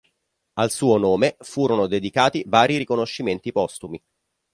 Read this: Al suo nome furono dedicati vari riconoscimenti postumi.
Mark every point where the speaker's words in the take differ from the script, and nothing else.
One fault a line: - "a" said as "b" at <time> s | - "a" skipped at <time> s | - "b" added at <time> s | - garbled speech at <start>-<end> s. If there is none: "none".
none